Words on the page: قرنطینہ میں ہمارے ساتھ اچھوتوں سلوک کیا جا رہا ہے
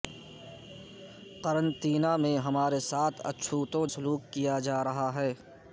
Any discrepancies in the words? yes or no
no